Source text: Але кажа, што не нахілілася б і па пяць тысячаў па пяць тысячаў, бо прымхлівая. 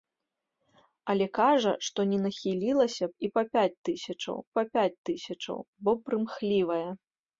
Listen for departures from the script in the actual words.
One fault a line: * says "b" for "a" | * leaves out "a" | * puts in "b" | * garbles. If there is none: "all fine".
all fine